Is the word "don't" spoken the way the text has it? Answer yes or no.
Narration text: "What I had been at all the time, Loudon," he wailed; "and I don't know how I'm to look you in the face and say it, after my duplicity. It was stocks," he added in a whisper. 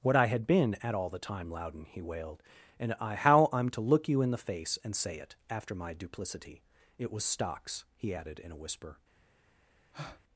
no